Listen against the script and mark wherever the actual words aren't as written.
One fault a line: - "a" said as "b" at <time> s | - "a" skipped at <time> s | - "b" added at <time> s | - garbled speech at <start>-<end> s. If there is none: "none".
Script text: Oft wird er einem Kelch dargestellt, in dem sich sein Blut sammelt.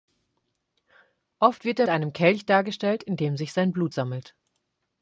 none